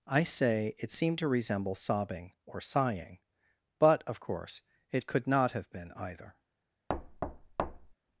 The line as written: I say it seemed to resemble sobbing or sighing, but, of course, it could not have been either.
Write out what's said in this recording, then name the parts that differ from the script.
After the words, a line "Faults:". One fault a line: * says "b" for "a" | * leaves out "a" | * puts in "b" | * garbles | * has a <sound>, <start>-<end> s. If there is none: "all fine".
I say it seemed to resemble sobbing or sighing, but, of course, it could not have been either.
Faults:
* has a thud, 6.9-7.9 s